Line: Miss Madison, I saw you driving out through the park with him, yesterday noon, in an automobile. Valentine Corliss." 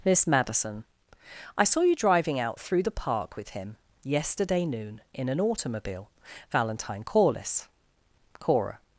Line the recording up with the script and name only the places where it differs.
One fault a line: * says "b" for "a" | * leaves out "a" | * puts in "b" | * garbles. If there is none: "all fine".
* puts in "Cora"